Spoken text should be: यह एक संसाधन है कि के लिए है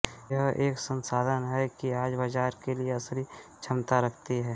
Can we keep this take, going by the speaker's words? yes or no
no